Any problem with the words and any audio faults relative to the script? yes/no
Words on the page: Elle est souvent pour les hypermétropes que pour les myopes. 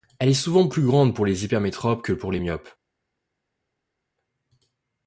yes